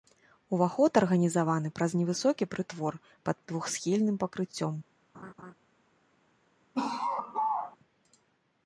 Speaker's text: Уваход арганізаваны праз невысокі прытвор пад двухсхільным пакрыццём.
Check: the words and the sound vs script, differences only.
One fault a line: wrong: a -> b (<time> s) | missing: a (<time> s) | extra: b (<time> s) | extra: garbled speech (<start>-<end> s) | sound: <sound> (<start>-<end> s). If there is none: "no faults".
sound: laugh (5.1-5.5 s)
sound: laugh (6.7-7.8 s)